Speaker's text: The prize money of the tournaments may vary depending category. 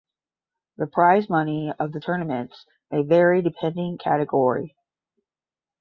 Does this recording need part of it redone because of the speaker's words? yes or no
no